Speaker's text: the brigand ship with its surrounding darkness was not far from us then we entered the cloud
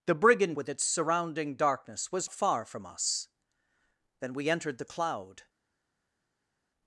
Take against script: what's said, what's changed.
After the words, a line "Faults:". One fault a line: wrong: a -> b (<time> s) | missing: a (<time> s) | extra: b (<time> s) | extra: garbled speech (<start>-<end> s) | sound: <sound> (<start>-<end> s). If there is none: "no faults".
the brigand with its surrounding darkness was far from us then we entered the cloud
Faults:
missing: ship (0.6 s)
missing: not (2.3 s)